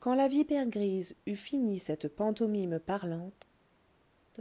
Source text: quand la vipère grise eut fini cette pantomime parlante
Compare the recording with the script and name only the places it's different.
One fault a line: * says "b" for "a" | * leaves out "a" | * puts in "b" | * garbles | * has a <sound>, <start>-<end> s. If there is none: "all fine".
all fine